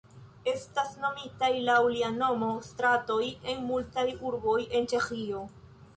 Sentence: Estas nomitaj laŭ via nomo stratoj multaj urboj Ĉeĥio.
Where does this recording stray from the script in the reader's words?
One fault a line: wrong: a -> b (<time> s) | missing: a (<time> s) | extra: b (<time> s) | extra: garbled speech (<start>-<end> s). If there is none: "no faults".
wrong: via -> lia (2.0 s)
extra: en (3.5 s)
extra: en (4.8 s)